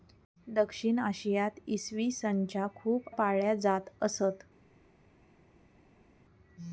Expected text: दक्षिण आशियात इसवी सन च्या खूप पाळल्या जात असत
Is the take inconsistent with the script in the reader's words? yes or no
no